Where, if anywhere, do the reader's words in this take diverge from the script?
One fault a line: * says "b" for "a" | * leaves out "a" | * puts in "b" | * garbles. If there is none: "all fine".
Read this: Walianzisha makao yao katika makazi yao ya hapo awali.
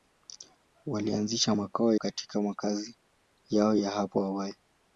* leaves out "yao"